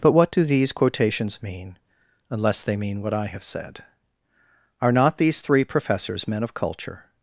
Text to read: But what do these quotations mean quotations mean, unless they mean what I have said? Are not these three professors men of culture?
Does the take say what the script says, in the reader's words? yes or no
no